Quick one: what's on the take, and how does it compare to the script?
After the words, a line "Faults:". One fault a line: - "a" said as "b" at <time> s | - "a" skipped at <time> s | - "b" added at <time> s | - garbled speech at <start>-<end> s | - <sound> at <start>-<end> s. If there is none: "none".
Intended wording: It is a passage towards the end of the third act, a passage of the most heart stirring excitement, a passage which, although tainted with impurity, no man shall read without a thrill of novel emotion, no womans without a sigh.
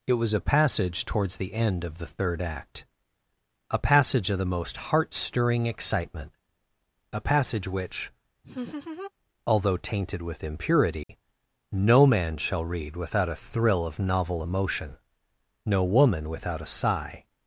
It was a passage towards the end of the third act, a passage of the most heart stirring excitement, a passage which, although tainted with impurity, no man shall read without a thrill of novel emotion, no woman without a sigh.
Faults:
- "is" said as "was" at 0.1 s
- laugh at 8.4-9.1 s
- dropout at 11.0-11.1 s
- "womans" said as "woman" at 15.8 s